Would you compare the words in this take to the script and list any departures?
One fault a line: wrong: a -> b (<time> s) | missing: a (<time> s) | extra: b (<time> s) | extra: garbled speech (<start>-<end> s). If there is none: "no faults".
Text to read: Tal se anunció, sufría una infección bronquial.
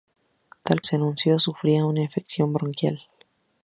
no faults